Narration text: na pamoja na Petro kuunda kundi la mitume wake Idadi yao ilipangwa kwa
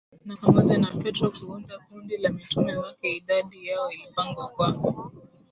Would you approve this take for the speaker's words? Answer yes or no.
yes